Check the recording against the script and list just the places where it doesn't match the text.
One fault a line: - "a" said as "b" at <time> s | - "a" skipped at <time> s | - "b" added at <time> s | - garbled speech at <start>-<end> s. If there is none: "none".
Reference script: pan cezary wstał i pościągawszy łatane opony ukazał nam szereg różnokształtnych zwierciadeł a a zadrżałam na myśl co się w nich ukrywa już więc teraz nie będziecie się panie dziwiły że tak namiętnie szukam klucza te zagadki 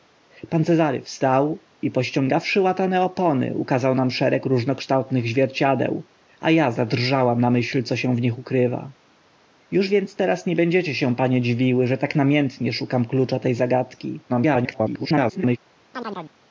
- garbled speech at 14.3-15.6 s